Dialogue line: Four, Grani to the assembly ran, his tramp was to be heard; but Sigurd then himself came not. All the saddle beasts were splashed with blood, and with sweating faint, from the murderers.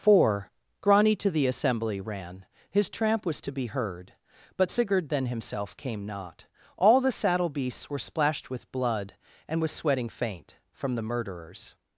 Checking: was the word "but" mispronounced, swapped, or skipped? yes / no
no